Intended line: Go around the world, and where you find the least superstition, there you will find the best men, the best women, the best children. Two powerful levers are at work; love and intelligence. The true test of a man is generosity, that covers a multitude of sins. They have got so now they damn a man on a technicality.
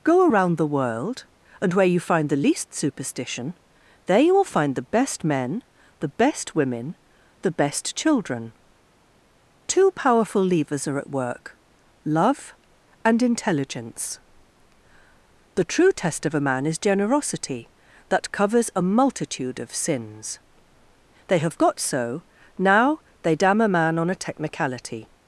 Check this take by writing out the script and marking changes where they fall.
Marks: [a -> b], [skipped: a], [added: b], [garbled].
Go around the world, and where you find the least superstition, there you will find the best men, the best women, the best children. Two powerful levers are at work; love and intelligence. The true test of a man is generosity, that covers a multitude of sins. They have got so now they damn a man on a technicality.